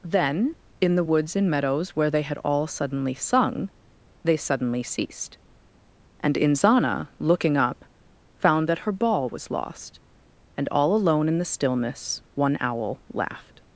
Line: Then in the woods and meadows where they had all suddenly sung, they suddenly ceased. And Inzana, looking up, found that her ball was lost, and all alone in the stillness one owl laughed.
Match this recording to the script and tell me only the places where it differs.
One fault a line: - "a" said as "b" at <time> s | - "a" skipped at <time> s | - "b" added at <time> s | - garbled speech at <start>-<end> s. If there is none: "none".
none